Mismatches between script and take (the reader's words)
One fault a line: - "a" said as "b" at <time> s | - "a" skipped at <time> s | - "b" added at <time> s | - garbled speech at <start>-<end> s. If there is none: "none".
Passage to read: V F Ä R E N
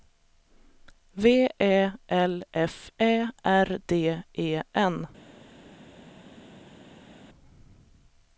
- "Ä L" added at 1.6 s
- "D" added at 3.9 s